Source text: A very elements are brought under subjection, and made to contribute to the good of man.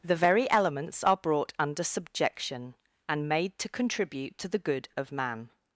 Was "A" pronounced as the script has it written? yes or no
no